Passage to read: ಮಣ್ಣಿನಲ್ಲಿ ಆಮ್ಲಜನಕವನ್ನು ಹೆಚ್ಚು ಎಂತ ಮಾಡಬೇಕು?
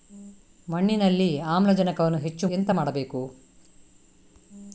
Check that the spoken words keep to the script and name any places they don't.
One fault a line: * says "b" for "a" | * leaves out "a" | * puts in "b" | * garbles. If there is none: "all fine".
all fine